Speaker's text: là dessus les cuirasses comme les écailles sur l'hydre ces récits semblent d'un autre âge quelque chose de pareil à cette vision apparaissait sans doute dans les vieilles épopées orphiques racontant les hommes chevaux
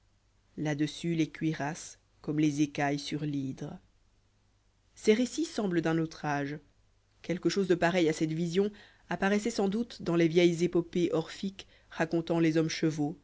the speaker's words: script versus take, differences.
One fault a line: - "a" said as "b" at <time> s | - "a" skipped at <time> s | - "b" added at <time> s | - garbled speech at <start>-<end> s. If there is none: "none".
none